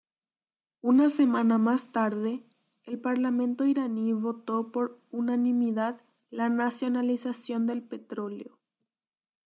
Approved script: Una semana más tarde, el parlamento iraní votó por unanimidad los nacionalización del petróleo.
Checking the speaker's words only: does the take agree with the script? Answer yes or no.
no